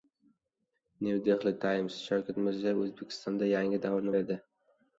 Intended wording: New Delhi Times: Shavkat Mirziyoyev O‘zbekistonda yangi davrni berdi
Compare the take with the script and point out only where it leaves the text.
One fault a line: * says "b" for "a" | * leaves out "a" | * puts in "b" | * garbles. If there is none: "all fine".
all fine